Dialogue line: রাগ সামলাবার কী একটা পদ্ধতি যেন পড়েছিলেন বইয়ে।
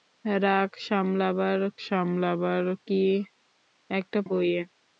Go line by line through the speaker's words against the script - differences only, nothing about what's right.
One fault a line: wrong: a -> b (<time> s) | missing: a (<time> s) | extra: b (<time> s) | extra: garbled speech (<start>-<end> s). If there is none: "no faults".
extra: সামলাবার (1.9 s)
missing: পদ্ধতি যেন পড়েছিলেন (4.2 s)